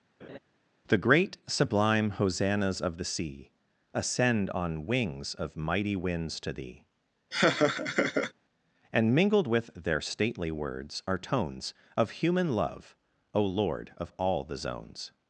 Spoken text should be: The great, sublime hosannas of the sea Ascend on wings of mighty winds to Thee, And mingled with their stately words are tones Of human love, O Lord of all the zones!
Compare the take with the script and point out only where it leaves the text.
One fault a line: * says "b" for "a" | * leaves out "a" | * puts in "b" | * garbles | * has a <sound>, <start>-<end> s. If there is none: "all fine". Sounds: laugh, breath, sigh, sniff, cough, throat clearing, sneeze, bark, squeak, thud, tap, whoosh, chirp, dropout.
* has a laugh, 0.2-0.4 s
* has a laugh, 7.3-8.3 s